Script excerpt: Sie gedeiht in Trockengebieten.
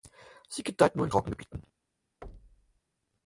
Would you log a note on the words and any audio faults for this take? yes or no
yes